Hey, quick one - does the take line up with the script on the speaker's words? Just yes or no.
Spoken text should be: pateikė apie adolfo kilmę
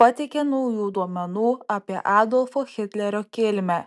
no